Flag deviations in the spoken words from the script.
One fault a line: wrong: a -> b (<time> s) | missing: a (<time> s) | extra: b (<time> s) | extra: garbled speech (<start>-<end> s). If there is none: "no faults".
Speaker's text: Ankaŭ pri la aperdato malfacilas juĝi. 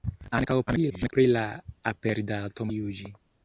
extra: garbled speech (0.7-1.1 s)
missing: malfacilas (2.7 s)